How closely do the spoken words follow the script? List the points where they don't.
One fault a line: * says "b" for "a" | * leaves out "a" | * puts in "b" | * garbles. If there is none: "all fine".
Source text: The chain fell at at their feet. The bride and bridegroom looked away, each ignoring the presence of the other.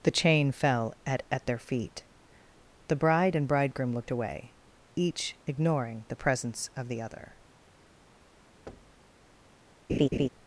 all fine